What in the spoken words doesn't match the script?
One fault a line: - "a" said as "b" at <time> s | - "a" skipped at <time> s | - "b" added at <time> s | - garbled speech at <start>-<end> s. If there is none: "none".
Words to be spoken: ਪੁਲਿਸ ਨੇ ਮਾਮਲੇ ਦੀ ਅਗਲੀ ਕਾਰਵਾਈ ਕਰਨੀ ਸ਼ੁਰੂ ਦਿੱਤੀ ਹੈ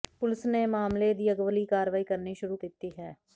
none